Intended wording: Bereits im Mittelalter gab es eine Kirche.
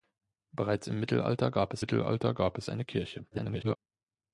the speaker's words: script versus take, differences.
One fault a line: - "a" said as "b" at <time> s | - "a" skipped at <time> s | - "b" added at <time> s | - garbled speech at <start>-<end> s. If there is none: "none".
- "Mittelalter gab es" added at 1.8 s
- garbled speech at 3.3-3.8 s